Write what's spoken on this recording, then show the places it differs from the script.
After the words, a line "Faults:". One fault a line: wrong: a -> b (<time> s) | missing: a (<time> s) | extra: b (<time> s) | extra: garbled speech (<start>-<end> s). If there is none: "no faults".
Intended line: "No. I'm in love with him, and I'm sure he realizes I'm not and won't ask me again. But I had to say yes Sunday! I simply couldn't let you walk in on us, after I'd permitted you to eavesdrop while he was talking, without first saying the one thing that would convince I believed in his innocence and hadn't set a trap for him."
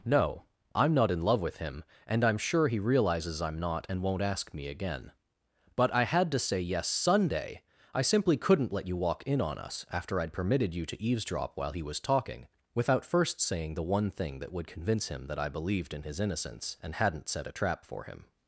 "No. I'm not in love with him, and I'm sure he realizes I'm not and won't ask me again. But I had to say yes Sunday! I simply couldn't let you walk in on us, after I'd permitted you to eavesdrop while he was talking, without first saying the one thing that would convince him that I believed in his innocence and hadn't set a trap for him."
Faults:
extra: not (0.9 s)
extra: him that (15.1 s)